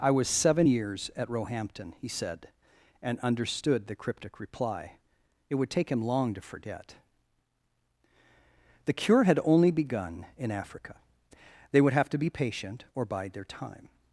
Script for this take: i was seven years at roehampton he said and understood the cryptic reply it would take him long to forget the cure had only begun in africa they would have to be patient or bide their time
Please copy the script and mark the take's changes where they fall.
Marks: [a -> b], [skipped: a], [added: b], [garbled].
i was seven years at roehampton he said and understood the cryptic reply it would take him long to forget the cure had only begun in africa they would have to be patient or bide their time